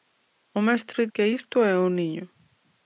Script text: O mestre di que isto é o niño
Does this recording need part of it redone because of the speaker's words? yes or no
yes